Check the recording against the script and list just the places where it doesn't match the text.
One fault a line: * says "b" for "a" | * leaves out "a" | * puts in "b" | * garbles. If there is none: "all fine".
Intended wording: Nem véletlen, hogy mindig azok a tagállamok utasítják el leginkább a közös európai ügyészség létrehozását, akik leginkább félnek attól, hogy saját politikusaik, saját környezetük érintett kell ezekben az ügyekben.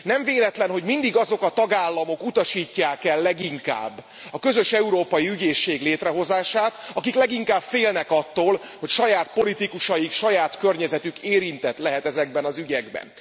* says "lehet" for "kell"